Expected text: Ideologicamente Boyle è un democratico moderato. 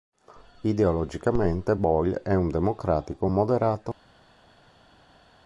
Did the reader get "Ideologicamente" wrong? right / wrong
right